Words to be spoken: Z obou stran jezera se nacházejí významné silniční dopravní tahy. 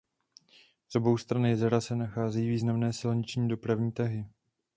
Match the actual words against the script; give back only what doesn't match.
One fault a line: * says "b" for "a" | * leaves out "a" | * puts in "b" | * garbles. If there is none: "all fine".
all fine